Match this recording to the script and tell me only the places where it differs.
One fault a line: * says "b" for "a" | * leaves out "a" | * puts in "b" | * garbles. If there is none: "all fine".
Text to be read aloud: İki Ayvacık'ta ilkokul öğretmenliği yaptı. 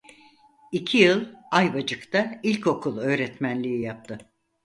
* puts in "yıl"